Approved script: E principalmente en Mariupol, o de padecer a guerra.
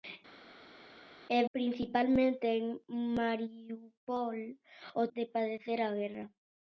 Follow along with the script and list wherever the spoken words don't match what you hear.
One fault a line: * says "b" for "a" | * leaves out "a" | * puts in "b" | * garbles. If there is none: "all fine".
all fine